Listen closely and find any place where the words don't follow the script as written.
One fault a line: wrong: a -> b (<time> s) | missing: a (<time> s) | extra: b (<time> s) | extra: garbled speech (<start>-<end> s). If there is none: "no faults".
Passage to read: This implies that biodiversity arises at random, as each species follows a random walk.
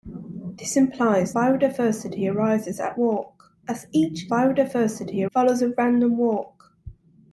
missing: that (1.4 s)
wrong: random -> walk (3.0 s)
wrong: species -> biodiversity (4.3 s)